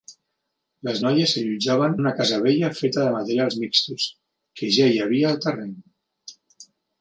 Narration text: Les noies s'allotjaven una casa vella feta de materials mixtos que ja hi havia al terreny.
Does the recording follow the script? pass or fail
pass